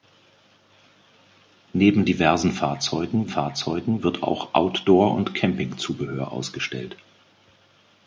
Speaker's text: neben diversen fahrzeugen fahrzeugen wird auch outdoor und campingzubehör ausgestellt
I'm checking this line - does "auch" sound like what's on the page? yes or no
yes